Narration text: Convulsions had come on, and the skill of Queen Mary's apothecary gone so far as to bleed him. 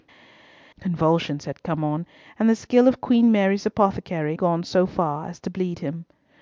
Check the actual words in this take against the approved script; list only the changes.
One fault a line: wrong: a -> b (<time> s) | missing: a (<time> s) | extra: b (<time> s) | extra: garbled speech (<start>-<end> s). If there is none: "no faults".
no faults